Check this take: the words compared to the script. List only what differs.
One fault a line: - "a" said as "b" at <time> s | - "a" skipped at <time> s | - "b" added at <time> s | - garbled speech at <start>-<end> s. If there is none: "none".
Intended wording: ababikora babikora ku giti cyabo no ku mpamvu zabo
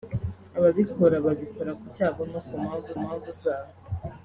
- "giti" skipped at 1.9 s
- "mpamvu" added at 3.0 s